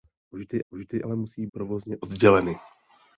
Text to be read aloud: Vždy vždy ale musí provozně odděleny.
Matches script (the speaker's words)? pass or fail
pass